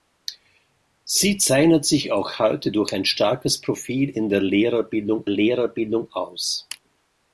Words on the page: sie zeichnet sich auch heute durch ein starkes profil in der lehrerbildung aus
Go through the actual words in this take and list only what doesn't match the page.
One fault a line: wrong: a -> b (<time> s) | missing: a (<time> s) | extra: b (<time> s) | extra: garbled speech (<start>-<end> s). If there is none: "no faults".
extra: lehrerbildung (5.3 s)